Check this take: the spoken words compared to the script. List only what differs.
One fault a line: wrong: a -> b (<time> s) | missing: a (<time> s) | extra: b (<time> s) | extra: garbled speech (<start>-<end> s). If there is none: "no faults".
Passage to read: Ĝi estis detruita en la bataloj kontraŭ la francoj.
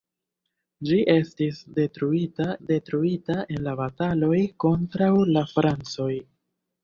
extra: detruita (2.7 s)